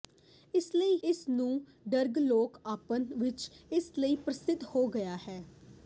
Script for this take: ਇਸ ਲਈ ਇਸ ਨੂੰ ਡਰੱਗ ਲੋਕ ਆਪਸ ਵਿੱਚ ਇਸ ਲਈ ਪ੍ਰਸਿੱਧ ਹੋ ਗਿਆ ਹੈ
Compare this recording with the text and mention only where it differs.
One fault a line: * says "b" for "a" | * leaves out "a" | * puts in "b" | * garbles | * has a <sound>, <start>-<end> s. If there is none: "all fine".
all fine